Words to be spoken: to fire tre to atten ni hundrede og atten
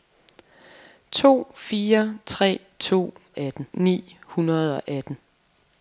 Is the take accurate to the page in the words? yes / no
yes